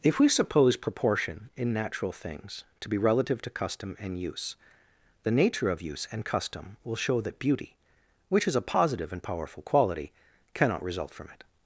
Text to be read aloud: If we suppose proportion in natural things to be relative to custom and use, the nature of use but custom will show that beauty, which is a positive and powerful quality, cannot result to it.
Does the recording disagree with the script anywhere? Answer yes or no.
yes